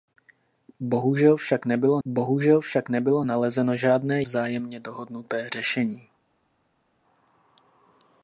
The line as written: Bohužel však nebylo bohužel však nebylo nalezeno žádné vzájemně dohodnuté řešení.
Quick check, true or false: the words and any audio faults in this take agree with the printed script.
true